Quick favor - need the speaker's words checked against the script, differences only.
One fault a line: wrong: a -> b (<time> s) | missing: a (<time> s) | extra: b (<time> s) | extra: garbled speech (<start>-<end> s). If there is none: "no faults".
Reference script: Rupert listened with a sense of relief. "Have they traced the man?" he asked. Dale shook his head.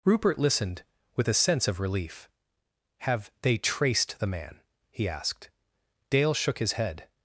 no faults